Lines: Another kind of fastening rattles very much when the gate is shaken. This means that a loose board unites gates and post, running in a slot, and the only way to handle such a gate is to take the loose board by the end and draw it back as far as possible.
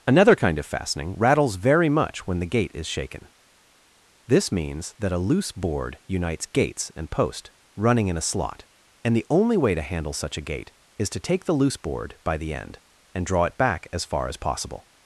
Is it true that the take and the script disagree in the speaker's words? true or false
false